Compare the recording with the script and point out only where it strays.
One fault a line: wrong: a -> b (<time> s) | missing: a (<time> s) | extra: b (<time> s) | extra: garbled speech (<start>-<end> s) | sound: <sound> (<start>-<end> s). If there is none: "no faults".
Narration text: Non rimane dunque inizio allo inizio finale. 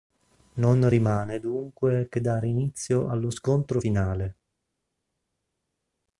extra: che dare (2.1 s)
wrong: inizio -> scontro (3.3 s)